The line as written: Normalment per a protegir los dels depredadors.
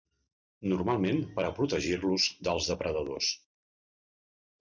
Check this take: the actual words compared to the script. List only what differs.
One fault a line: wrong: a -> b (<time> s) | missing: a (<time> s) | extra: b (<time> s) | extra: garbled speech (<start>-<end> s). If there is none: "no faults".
no faults